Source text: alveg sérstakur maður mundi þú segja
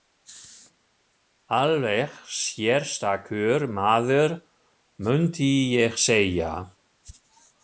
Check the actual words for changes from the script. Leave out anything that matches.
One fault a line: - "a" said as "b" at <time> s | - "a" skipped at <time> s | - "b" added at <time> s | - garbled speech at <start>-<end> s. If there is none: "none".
- "þú" said as "ég" at 5.8 s